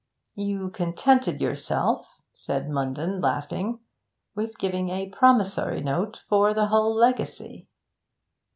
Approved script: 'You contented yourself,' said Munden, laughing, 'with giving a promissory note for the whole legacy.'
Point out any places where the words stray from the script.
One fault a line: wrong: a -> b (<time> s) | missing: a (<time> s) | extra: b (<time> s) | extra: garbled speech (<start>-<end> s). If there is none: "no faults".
no faults